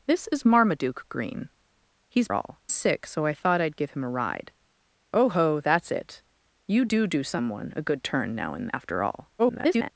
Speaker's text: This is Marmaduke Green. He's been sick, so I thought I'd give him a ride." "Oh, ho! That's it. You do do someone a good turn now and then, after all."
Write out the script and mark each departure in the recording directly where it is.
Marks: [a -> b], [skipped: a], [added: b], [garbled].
This is Marmaduke Green. He's [been -> all] sick, so I thought I'd give him a ride." "Oh, ho! That's it. You do do someone a good turn now and [skipped: then,] after all." [garbled]